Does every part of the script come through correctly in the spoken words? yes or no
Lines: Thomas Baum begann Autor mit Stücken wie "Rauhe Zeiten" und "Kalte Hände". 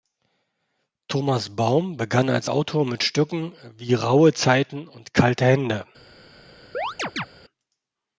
no